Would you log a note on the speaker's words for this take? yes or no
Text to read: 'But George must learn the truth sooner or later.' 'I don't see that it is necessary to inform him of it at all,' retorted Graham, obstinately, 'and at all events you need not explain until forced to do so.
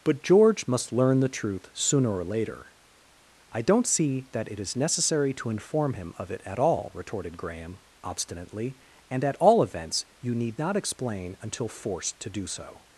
no